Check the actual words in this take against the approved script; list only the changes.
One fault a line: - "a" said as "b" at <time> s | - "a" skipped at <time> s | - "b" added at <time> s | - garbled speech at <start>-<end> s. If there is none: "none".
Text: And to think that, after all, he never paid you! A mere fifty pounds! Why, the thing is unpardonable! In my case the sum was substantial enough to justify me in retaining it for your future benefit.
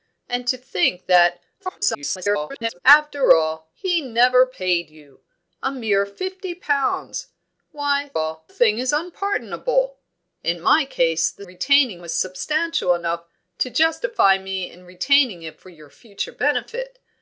- garbled speech at 1.6-2.8 s
- "the" said as "all" at 8.1 s
- "sum" said as "retaining" at 11.4 s